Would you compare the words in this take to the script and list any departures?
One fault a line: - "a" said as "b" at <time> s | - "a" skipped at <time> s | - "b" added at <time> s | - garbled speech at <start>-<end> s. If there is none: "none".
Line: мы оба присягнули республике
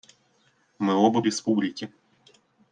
- "присягнули" skipped at 1.2 s